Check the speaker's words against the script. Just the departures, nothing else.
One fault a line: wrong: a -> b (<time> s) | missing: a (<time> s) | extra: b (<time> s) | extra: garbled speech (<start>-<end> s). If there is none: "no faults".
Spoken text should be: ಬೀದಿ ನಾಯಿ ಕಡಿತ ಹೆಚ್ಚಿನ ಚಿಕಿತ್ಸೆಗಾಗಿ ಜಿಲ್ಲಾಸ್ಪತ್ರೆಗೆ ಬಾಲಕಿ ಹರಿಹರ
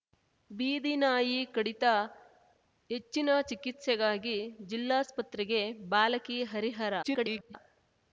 extra: garbled speech (7.0-7.5 s)